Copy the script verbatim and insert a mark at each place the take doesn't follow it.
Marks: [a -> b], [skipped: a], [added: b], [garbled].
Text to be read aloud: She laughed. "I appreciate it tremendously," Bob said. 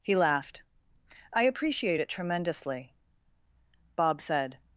[She -> He] laughed. "I appreciate it tremendously," Bob said.